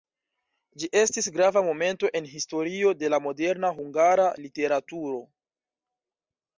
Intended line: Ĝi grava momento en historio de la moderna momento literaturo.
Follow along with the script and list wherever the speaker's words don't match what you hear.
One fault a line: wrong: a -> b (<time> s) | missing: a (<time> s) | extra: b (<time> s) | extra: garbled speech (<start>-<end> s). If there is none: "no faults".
extra: estis (1.0 s)
wrong: momento -> hungara (3.8 s)